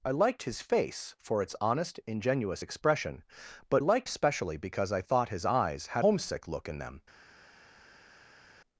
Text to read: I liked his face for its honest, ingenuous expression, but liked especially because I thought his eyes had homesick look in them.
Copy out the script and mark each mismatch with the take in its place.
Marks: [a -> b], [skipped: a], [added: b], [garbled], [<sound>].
I liked his face for its honest, ingenuous expression, but liked especially because I thought his eyes had homesick look in them.